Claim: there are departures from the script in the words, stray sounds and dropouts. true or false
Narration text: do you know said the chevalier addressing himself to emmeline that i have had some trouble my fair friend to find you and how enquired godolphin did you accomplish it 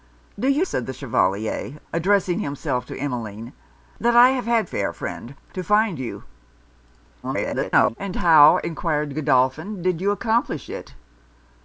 true